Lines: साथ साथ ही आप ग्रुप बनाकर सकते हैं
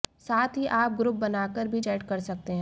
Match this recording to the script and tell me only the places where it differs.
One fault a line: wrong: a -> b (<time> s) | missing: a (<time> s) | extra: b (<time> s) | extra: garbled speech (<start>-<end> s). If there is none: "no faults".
missing: साथ (0.6 s)
extra: भी चैट कर (1.7 s)